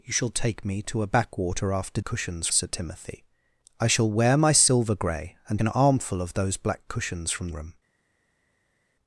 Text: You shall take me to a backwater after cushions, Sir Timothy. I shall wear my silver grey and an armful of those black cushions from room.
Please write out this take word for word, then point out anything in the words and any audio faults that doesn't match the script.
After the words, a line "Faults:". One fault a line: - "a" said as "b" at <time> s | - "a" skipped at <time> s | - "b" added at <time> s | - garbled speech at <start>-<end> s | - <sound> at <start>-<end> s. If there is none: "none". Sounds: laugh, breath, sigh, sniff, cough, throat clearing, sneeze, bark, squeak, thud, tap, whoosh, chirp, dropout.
You shall take me to a backwater after cushions, Sir Timothy. I shall wear my silver grey and an armful of those black cushions from room.
Faults:
none